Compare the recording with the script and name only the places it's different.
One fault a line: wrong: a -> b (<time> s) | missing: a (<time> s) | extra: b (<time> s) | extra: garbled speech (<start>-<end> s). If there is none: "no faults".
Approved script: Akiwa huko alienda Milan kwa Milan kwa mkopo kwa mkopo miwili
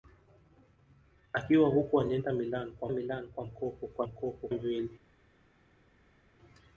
no faults